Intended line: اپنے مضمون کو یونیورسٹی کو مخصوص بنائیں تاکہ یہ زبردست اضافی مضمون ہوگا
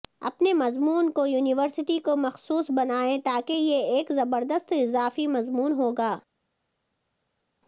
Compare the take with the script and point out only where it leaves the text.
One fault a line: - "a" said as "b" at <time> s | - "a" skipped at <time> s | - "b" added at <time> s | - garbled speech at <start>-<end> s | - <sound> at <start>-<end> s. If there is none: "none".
- "ایک" added at 4.0 s